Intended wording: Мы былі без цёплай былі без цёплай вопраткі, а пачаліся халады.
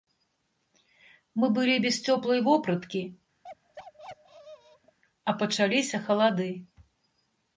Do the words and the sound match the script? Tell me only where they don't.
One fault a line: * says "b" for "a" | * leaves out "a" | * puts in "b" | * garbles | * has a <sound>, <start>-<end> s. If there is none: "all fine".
* leaves out "былі без цёплай"
* has a bark, 3.4-5.0 s